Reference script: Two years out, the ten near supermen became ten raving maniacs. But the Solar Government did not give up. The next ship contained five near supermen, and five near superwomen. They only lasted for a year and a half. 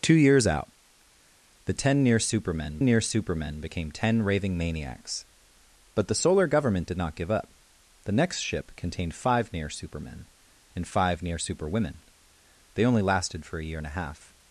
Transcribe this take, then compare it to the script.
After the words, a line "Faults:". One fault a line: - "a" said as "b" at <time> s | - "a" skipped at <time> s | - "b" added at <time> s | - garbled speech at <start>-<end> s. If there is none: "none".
Two years out, the ten near supermen near supermen became ten raving maniacs. But the Solar Government did not give up. The next ship contained five near supermen, and five near superwomen. They only lasted for a year and a half.
Faults:
- "near supermen" added at 2.8 s